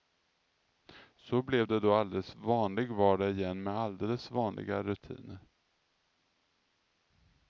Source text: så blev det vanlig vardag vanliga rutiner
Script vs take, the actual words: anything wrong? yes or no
yes